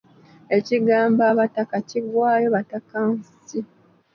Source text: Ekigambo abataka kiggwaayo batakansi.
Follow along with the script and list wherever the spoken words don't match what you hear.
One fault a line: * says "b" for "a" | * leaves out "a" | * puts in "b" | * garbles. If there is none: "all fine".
all fine